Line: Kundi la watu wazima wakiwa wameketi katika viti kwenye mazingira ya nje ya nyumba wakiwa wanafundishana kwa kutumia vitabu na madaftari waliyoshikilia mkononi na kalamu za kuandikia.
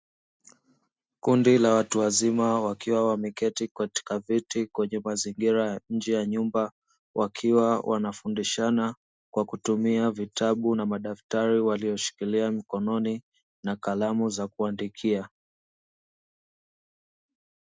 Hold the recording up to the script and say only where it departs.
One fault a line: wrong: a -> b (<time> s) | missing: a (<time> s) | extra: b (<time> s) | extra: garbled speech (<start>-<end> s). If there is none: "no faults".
no faults